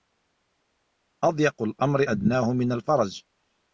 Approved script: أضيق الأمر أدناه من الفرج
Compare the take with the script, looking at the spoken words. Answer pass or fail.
pass